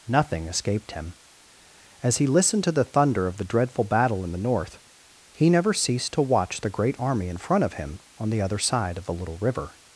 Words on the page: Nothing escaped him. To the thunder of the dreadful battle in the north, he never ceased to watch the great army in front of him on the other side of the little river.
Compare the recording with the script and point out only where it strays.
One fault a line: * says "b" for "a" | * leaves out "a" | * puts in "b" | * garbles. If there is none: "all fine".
* puts in "As he listened"